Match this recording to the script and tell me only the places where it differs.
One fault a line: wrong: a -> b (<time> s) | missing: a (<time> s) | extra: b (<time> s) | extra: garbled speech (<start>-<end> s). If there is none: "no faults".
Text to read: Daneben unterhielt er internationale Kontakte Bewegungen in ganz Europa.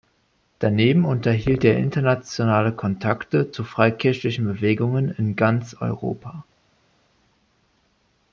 extra: zu freikirchlichen (3.5 s)